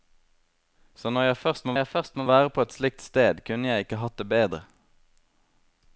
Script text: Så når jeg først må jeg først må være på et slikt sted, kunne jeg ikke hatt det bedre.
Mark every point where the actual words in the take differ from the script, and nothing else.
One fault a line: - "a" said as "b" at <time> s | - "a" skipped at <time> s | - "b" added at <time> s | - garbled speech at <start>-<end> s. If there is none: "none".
none